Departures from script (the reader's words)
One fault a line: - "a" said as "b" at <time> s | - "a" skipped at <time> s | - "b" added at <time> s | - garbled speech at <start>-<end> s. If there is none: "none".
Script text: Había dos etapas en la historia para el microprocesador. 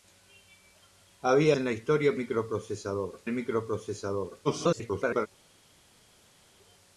- "dos etapas" skipped at 1.6 s
- "para" said as "microprocesador" at 2.1 s
- garbled speech at 4.4-5.3 s